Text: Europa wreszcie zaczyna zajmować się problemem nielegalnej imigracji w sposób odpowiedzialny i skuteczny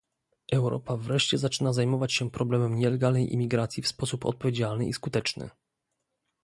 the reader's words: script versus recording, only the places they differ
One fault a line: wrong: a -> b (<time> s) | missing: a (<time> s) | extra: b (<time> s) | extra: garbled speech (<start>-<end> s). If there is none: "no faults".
no faults